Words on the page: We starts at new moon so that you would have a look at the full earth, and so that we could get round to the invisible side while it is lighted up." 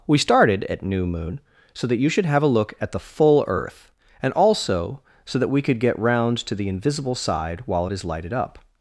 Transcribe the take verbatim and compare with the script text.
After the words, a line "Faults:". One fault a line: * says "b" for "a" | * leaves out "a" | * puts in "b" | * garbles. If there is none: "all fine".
We started at new moon so that you should have a look at the full earth, and also so that we could get round to the invisible side while it is lighted up."
Faults:
* says "started" for "starts"
* says "should" for "would"
* puts in "also"